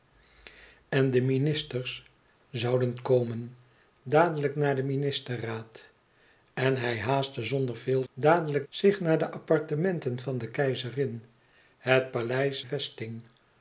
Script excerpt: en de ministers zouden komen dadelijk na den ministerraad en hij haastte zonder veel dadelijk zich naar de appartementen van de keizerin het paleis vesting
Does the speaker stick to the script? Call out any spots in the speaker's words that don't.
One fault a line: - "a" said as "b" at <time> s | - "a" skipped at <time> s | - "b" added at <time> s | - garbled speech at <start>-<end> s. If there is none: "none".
none